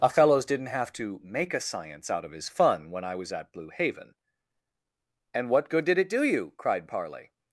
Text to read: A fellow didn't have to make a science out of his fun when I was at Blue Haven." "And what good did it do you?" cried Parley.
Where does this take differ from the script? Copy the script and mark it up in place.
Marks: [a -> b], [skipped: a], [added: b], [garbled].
A [fellow -> fellows] didn't have to make a science out of his fun when I was at Blue Haven." "And what good did it do you?" cried Parley.